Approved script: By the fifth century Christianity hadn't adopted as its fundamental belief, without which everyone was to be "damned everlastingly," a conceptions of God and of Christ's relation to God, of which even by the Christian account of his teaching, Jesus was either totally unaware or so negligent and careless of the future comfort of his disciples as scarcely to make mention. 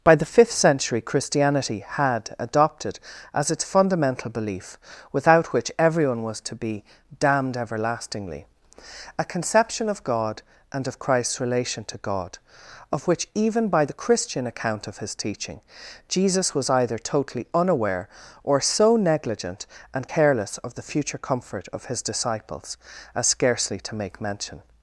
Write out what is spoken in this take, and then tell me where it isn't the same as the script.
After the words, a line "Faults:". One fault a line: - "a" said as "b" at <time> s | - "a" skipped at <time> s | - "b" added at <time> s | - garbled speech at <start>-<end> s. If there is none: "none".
By the fifth century Christianity had adopted as its fundamental belief, without which everyone was to be "damned everlastingly," a conception of God and of Christ's relation to God, of which even by the Christian account of his teaching, Jesus was either totally unaware or so negligent and careless of the future comfort of his disciples as scarcely to make mention.
Faults:
- "hadn't" said as "had" at 1.9 s
- "conceptions" said as "conception" at 9.2 s